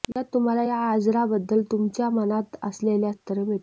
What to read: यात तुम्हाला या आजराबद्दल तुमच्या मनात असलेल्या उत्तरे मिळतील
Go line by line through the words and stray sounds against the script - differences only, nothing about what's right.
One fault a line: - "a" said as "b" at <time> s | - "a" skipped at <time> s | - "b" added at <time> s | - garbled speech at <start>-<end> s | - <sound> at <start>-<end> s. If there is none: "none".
- dropout at 0.1-0.2 s